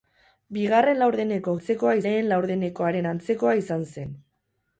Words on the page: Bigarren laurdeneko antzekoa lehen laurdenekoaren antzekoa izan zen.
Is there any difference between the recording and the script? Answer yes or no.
no